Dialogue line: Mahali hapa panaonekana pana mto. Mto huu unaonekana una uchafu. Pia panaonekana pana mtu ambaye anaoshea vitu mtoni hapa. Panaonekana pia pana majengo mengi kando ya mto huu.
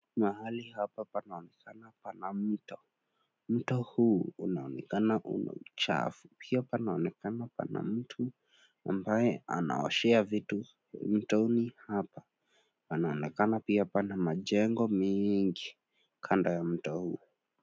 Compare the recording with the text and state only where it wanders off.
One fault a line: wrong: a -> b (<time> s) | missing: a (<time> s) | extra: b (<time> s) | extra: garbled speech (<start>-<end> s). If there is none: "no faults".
no faults